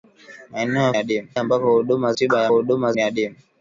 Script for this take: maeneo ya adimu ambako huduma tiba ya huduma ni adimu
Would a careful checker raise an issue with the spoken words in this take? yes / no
no